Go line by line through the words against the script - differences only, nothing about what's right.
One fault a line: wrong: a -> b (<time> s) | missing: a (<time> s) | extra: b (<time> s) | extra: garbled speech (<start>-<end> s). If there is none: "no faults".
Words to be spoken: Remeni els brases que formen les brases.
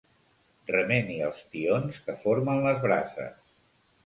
wrong: brases -> tions (1.6 s)